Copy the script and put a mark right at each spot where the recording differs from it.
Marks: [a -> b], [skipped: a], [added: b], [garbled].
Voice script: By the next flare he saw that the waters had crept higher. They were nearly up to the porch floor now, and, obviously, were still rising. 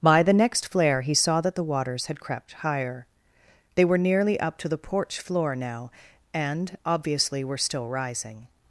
By the next flare he saw that the waters had crept higher. They were nearly up to the porch floor now, and, obviously, were still rising.